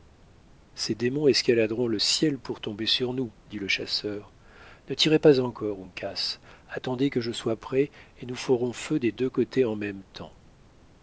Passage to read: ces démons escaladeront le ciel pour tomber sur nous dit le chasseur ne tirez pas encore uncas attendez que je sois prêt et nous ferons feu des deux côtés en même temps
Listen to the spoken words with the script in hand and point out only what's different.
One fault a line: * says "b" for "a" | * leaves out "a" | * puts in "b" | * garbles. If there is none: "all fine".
all fine